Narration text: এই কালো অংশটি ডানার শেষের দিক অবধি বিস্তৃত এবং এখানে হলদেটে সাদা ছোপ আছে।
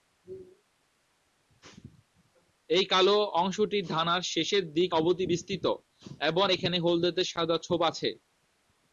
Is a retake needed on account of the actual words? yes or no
no